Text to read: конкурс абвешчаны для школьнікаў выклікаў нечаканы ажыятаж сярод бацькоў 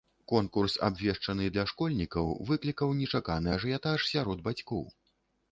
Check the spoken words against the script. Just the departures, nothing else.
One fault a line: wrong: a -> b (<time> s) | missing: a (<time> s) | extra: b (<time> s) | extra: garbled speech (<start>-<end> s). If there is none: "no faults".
no faults